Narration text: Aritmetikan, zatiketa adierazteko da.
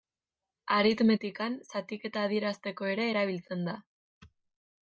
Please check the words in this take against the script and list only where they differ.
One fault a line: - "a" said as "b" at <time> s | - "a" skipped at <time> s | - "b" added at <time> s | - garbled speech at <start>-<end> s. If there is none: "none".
- "ere erabiltzen" added at 3.0 s